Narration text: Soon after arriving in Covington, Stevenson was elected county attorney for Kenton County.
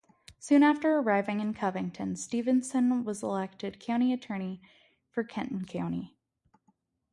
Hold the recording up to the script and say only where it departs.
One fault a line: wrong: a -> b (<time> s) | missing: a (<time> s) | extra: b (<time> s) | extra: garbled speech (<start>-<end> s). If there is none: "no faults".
no faults